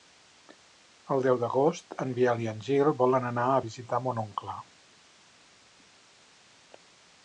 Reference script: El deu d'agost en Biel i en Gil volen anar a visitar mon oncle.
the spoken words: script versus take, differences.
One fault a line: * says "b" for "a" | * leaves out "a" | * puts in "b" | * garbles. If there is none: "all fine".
all fine